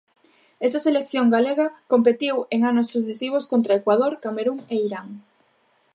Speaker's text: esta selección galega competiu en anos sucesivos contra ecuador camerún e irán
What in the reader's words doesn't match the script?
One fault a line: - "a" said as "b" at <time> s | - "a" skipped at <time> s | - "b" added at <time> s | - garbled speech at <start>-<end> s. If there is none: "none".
none